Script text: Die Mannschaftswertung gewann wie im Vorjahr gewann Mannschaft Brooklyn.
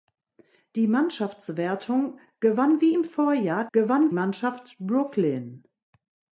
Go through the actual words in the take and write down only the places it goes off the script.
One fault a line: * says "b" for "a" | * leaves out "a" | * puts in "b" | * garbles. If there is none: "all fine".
all fine